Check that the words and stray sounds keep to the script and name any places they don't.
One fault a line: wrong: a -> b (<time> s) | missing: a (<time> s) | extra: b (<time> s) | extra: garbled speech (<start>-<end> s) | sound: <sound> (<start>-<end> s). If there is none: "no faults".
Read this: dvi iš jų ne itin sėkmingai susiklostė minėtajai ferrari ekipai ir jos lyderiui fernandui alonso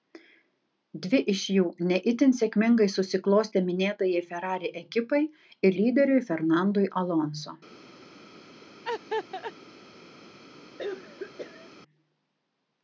missing: jos (5.8 s)
sound: laugh (8.8-9.5 s)
sound: cough (10.8-11.7 s)